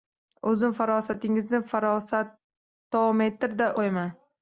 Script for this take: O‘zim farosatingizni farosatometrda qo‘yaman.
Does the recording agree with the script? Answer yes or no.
yes